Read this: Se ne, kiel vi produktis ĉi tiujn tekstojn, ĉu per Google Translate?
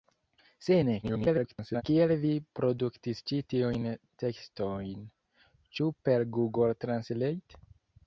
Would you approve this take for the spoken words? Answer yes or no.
no